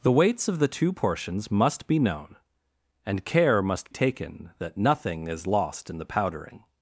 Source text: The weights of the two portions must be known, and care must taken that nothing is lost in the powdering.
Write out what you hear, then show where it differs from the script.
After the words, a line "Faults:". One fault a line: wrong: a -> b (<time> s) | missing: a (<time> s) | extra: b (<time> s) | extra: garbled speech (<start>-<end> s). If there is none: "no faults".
The weights of the two portions must be known, and care must taken that nothing is lost in the powdering.
Faults:
no faults